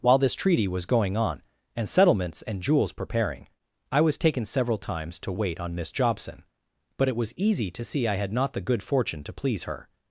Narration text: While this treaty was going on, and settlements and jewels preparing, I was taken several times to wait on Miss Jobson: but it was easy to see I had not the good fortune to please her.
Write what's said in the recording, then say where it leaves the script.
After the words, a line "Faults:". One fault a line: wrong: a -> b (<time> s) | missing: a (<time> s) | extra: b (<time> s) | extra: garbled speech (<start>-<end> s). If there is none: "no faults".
While this treaty was going on, and settlements and jewels preparing, I was taken several times to wait on Miss Jobson: but it was easy to see I had not the good fortune to please her.
Faults:
no faults